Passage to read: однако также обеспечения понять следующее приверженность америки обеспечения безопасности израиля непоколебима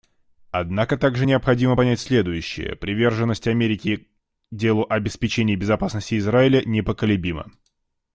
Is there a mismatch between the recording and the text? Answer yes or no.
yes